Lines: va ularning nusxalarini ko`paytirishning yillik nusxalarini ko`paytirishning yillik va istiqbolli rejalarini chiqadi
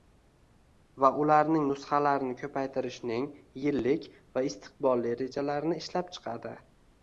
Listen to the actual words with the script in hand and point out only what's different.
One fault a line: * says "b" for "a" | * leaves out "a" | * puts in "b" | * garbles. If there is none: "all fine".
* leaves out "nusxalarini ko`paytirishning yillik"
* puts in "ishlab"